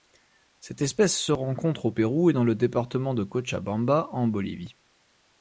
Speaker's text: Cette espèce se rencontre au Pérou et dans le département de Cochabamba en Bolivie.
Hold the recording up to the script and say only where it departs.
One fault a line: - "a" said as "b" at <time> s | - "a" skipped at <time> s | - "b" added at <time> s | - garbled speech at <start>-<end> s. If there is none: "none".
none